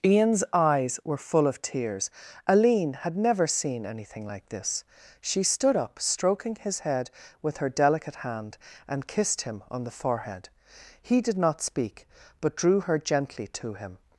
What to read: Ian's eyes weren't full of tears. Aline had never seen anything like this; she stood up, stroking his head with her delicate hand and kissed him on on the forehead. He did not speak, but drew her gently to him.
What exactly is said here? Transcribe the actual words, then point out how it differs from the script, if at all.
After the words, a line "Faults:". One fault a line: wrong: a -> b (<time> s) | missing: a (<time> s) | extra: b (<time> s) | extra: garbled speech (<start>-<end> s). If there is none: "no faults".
Ian's eyes were full of tears. Aline had never seen anything like this; she stood up, stroking his head with her delicate hand and kissed him on the forehead. He did not speak, but drew her gently to him.
Faults:
wrong: weren't -> were (1.1 s)
missing: on (9.8 s)